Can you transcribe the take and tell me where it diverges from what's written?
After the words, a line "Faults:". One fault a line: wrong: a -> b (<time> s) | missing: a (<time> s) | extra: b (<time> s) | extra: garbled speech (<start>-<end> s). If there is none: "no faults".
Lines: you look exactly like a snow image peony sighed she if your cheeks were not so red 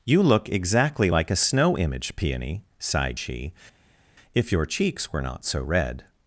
you look exactly like a snow image peony sighed she if your cheeks were not so red
Faults:
no faults